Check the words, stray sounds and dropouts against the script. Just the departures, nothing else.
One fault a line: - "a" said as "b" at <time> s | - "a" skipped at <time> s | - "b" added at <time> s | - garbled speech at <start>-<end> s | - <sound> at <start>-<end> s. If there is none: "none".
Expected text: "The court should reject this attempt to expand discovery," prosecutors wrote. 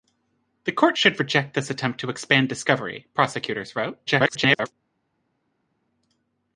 - garbled speech at 4.1-4.7 s